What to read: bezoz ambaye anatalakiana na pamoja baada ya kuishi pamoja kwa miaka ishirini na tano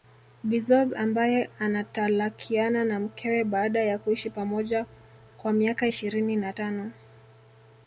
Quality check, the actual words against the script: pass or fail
fail